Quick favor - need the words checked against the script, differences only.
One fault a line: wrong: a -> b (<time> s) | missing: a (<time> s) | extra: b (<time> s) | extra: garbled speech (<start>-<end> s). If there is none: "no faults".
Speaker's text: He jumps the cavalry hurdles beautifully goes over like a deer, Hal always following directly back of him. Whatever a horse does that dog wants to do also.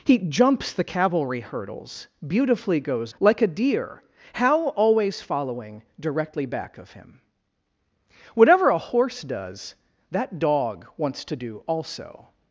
missing: over (3.1 s)